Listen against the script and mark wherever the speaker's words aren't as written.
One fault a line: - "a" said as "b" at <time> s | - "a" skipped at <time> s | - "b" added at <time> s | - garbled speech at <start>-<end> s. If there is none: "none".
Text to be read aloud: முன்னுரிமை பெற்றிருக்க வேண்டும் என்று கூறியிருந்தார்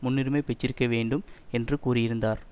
none